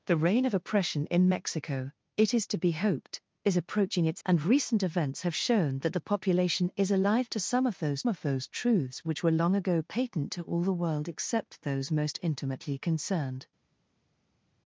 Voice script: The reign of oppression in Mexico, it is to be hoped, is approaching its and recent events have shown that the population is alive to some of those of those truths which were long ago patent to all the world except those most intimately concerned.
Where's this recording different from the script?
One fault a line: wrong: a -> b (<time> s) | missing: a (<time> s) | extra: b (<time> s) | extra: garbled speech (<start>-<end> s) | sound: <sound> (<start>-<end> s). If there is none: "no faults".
no faults